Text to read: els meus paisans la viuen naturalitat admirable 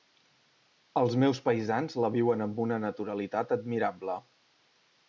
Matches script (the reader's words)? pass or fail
fail